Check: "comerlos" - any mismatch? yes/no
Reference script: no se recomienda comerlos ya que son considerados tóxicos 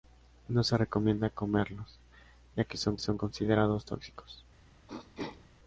no